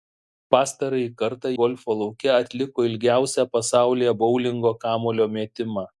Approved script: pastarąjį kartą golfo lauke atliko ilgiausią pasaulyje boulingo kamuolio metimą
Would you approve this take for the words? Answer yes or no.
yes